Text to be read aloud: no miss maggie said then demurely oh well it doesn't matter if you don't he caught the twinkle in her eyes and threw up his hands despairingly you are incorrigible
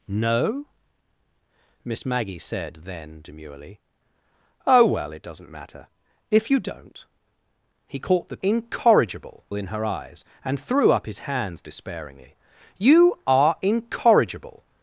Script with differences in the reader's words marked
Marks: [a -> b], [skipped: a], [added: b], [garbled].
no miss maggie said then demurely oh well it doesn't matter if you don't he caught the [twinkle -> incorrigible] in her eyes and threw up his hands despairingly you are incorrigible